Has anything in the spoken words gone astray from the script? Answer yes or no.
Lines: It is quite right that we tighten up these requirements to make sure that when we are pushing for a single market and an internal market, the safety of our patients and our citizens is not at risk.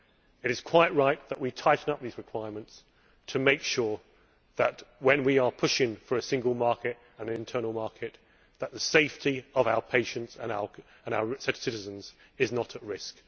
no